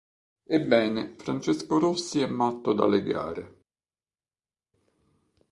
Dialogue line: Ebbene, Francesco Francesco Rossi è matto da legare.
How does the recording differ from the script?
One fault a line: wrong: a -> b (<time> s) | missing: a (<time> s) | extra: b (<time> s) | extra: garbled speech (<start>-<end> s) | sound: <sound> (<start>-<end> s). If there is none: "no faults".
missing: Francesco (1.8 s)